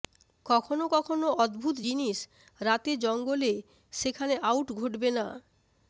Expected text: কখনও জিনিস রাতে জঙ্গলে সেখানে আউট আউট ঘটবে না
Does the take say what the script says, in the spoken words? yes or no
no